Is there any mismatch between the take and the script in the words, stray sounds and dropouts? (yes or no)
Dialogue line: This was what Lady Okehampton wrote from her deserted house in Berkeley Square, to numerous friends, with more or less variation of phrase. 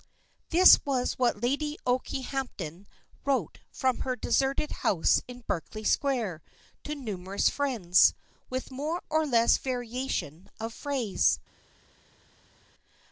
no